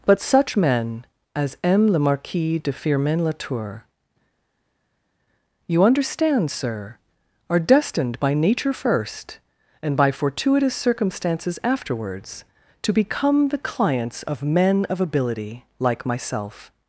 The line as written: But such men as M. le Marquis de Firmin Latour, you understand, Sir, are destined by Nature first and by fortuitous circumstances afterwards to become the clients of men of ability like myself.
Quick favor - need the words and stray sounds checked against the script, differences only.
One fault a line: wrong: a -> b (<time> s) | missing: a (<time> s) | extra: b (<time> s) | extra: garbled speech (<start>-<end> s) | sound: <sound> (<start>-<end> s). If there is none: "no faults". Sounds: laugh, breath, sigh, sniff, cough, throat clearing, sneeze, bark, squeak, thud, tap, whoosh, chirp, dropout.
no faults